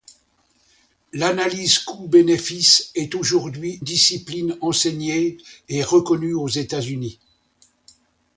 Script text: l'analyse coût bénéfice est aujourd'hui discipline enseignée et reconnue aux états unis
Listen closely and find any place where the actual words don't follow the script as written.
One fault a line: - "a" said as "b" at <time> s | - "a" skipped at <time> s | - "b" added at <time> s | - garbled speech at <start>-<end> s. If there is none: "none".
none